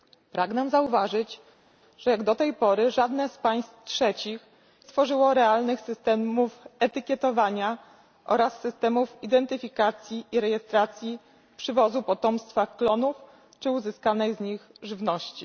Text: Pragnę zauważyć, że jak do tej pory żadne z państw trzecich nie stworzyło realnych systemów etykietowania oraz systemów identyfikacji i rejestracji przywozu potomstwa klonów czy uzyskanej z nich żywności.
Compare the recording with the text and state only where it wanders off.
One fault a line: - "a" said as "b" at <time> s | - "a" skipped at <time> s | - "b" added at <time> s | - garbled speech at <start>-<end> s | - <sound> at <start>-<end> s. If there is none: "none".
- "nie" skipped at 4.5 s